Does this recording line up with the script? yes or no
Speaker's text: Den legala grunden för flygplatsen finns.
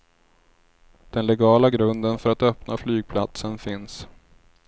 no